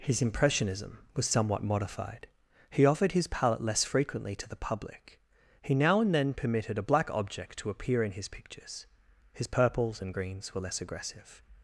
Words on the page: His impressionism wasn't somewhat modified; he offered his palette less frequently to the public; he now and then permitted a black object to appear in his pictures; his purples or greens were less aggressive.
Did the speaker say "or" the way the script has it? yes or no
no